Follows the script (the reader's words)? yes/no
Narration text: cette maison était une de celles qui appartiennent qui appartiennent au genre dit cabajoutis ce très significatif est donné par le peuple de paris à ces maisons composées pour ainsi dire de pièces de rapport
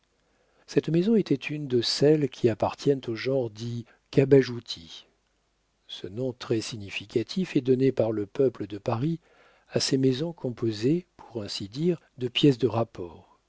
no